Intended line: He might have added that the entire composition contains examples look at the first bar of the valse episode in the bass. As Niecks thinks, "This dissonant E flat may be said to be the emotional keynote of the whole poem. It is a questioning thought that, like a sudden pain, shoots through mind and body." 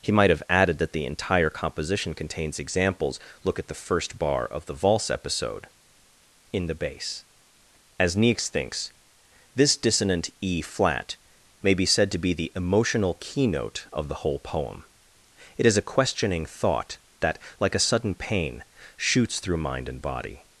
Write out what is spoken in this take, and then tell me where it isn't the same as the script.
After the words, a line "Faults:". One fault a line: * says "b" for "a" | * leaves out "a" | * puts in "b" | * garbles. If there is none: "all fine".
He might have added that the entire composition contains examples look at the first bar of the valse episode in the bass. As Niecks thinks, "This dissonant E flat may be said to be the emotional keynote of the whole poem. It is a questioning thought that, like a sudden pain, shoots through mind and body."
Faults:
all fine